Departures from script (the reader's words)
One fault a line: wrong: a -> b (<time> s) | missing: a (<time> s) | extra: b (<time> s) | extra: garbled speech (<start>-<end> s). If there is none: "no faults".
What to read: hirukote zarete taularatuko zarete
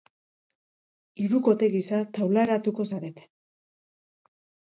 wrong: zarete -> gisa (1.8 s)